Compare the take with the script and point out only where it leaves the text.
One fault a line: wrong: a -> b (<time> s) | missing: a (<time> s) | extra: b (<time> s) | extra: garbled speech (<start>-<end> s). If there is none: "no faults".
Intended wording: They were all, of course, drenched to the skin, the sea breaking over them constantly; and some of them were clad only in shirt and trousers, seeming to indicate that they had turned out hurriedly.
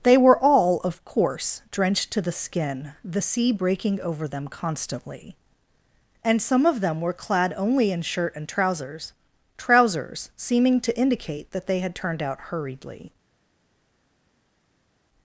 extra: trousers (9.6 s)